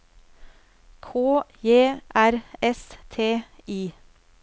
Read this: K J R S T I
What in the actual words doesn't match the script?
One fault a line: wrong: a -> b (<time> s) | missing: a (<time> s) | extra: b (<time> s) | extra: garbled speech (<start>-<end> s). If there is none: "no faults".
no faults